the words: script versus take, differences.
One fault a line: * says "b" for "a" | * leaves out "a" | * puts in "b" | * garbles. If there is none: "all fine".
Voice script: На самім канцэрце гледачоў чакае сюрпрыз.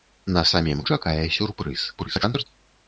* leaves out "канцэрце гледачоў"
* garbles